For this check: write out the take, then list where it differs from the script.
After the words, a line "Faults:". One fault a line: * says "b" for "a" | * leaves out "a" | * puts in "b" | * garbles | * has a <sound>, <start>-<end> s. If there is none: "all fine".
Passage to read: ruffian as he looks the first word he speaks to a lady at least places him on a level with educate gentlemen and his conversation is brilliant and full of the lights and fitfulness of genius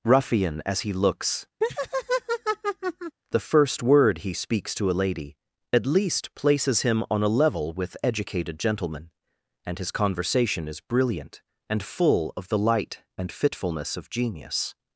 ruffian as he looks the first word he speaks to a lady at least places him on a level with educated gentlemen and his conversation is brilliant and full of the light and fitfulness of genius
Faults:
* has a laugh, 1.6-3.2 s
* says "educated" for "educate"
* says "light" for "lights"